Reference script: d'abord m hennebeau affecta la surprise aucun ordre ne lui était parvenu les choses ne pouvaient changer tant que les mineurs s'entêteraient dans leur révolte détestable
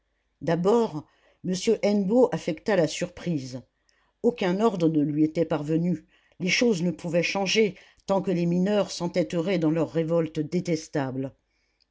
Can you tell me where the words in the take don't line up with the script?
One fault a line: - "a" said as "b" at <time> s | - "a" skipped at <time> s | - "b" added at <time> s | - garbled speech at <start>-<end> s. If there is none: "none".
none